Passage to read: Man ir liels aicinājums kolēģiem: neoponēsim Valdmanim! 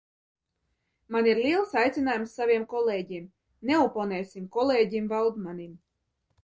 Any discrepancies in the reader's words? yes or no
yes